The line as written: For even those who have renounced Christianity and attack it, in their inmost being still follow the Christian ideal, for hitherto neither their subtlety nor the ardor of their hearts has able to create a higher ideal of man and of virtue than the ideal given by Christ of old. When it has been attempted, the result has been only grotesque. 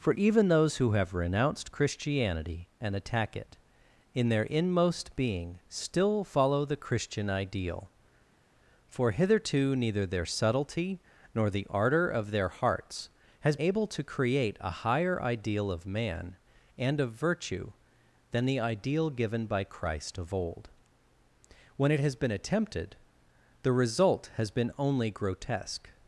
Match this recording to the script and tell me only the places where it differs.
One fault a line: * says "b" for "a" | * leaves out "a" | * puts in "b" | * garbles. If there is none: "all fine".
all fine